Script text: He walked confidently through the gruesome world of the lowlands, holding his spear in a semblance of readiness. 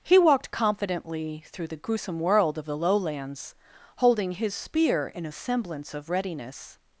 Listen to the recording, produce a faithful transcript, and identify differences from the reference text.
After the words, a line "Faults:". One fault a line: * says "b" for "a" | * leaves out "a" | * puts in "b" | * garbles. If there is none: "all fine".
He walked confidently through the gruesome world of the lowlands, holding his spear in a semblance of readiness.
Faults:
all fine